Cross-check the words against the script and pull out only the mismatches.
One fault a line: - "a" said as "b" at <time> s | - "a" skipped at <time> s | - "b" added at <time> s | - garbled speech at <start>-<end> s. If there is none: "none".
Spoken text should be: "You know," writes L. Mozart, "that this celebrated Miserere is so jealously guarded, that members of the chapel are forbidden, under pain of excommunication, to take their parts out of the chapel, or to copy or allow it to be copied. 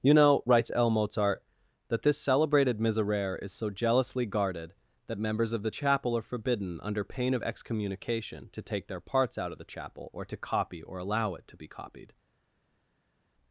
none